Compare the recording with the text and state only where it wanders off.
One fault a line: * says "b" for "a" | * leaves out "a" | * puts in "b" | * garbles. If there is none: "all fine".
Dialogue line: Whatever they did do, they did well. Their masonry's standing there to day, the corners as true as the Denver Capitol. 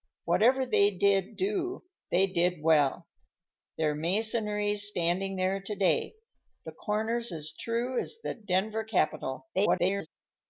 * garbles